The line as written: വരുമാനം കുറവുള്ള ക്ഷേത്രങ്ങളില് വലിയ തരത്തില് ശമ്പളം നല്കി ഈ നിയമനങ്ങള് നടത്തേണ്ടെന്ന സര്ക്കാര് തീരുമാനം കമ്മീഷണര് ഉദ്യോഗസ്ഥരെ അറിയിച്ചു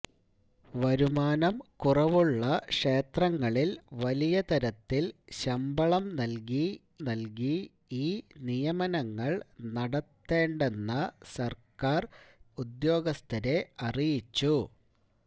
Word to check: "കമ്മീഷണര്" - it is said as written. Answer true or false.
false